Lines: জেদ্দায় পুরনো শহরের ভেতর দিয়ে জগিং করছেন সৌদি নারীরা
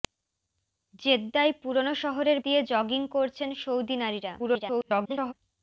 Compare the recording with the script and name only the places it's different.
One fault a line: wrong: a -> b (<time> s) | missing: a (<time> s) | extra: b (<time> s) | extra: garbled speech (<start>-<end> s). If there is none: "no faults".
missing: ভেতর (2.4 s)
extra: garbled speech (4.4-5.3 s)